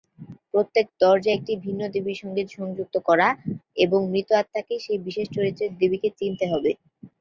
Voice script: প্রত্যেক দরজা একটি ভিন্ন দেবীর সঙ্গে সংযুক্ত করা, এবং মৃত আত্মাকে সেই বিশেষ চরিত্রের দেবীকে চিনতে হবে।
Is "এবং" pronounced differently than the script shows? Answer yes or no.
no